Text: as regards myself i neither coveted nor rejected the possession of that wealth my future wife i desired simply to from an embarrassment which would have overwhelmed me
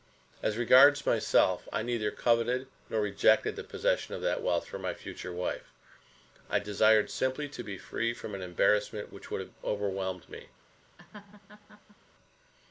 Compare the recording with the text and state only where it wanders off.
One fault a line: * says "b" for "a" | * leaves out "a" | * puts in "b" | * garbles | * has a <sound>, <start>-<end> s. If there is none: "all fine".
* puts in "for"
* puts in "be free"
* has a laugh, 11.0-12.0 s